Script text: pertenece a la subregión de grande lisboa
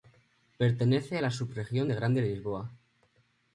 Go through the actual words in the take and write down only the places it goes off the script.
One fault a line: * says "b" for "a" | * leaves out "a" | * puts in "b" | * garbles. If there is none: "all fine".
all fine